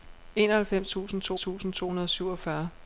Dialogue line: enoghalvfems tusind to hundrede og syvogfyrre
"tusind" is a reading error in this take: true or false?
false